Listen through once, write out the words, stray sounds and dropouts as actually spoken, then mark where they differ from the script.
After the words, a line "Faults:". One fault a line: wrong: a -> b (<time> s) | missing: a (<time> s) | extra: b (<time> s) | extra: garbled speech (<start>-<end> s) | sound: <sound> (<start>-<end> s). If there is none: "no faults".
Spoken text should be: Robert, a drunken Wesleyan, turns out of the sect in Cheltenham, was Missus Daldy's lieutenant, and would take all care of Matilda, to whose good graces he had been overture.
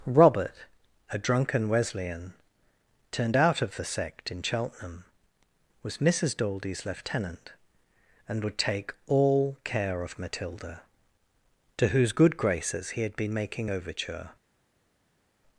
Robert, a drunken Wesleyan, turned out of the sect in Cheltenham, was Missus Daldy's lieutenant, and would take all care of Matilda, to whose good graces he had been making overture.
Faults:
wrong: turns -> turned (3.1 s)
extra: making (13.3 s)